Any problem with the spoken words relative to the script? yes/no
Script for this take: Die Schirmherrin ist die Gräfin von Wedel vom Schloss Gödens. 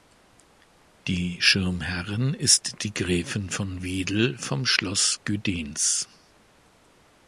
no